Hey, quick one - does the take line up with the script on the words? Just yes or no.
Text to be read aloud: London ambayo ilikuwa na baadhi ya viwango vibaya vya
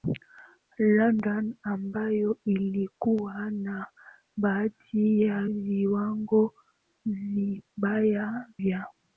yes